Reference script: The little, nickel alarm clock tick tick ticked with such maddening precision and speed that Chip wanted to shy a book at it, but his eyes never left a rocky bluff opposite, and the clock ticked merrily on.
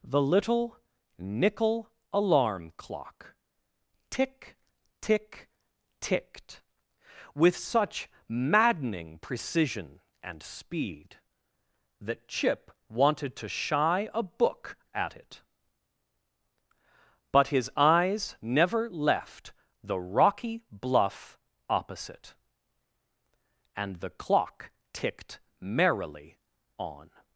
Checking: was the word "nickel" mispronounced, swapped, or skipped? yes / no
no